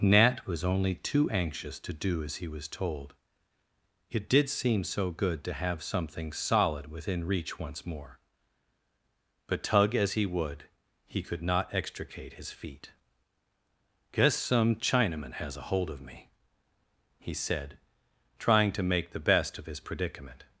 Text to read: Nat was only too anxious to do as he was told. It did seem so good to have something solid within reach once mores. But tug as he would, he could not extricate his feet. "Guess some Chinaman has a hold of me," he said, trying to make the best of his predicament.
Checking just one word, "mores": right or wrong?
wrong